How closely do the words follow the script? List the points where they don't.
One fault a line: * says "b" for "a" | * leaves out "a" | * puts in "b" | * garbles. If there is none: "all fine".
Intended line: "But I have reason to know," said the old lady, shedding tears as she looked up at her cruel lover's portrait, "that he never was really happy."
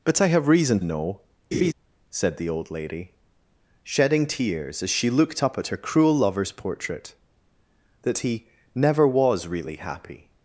* leaves out "to"